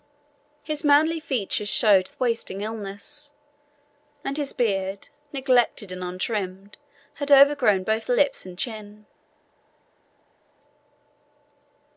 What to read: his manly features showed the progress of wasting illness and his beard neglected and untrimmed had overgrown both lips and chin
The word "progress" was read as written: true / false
false